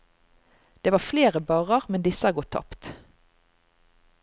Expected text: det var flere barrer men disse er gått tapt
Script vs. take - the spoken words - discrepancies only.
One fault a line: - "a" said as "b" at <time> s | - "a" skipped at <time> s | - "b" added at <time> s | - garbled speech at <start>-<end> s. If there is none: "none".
none